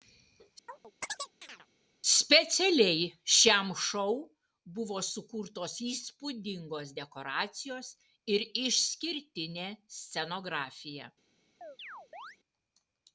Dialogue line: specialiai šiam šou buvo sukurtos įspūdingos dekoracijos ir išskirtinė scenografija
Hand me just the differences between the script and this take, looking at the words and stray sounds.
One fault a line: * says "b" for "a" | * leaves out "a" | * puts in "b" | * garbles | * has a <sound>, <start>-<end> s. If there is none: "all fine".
* has a chirp, 0.7-1.7 s
* has a chirp, 11.6-12.4 s